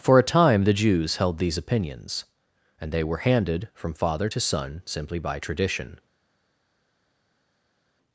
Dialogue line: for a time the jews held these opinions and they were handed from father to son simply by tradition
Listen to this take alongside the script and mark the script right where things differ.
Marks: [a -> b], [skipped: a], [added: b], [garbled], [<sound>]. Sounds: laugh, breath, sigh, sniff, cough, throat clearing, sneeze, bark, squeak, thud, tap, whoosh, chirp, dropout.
for a time the jews held these opinions and they were handed from father to son simply by tradition